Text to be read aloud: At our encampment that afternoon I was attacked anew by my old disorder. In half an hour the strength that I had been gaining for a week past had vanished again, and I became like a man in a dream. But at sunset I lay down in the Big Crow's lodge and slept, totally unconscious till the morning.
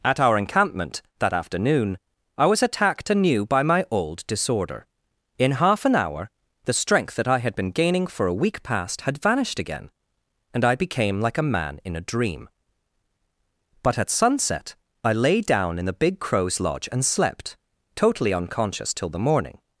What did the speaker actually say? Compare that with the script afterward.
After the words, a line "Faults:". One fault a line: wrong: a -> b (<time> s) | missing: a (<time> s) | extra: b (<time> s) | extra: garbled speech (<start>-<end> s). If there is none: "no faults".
At our encampment that afternoon I was attacked anew by my old disorder. In half an hour the strength that I had been gaining for a week past had vanished again, and I became like a man in a dream. But at sunset I lay down in the Big Crow's lodge and slept, totally unconscious till the morning.
Faults:
no faults